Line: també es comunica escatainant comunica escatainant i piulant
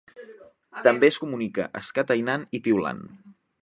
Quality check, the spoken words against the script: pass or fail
fail